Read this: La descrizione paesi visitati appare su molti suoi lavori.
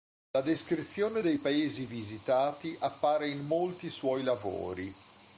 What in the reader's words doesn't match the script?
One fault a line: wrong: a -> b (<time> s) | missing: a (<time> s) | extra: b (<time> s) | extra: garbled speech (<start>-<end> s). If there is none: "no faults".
extra: dei (1.2 s)
wrong: su -> in (3.3 s)